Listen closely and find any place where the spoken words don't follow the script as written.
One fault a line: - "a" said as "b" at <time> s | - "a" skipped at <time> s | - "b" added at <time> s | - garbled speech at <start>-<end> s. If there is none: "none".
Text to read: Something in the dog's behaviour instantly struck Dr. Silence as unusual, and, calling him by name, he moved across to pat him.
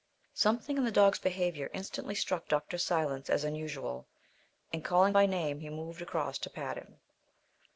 - "him" skipped at 5.1 s